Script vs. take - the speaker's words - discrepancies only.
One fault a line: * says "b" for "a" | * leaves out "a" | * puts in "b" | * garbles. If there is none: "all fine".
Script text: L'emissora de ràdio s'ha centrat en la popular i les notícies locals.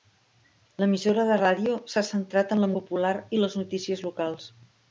all fine